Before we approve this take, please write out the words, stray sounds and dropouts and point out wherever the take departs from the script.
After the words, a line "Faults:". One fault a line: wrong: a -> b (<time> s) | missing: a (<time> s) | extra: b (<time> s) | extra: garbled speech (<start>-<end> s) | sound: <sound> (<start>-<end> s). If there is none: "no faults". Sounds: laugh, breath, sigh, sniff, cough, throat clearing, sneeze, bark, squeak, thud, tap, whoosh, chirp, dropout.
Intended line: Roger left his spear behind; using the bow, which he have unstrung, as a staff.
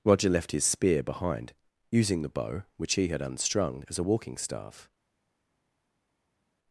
Roger left his spear behind; using the bow, which he had unstrung, as a walking staff.
Faults:
wrong: have -> had (3.1 s)
extra: walking (4.0 s)